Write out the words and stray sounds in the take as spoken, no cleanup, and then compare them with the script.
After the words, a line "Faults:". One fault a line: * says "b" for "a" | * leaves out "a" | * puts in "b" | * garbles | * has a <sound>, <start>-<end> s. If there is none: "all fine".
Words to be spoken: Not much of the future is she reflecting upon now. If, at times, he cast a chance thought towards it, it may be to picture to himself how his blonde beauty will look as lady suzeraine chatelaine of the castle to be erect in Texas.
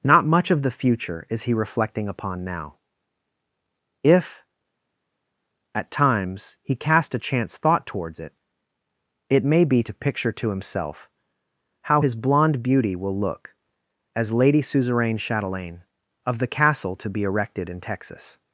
Not much of the future is he reflecting upon now. If, at times, he cast a chance thought towards it, it may be to picture to himself how his blonde beauty will look as lady suzeraine chatelaine of the castle to be erected in Texas.
Faults:
* says "he" for "she"
* says "erected" for "erect"